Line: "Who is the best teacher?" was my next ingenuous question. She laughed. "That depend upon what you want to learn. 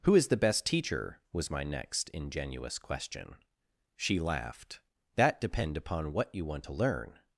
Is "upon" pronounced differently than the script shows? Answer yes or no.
no